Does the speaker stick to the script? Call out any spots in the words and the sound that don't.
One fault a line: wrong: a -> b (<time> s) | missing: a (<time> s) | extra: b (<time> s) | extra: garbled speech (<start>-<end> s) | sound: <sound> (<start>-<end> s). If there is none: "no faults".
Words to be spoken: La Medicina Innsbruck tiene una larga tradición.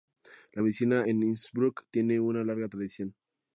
extra: en (1.0 s)